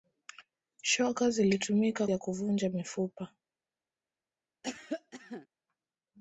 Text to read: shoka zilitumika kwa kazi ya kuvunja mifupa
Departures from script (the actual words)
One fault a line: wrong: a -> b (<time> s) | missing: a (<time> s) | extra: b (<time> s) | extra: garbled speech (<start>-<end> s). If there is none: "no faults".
missing: kwa kazi (2.1 s)